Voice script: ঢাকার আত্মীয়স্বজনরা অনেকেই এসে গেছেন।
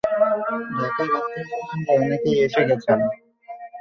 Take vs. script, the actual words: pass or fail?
pass